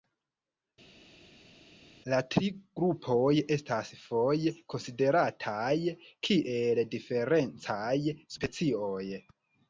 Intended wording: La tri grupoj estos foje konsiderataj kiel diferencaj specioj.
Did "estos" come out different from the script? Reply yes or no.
yes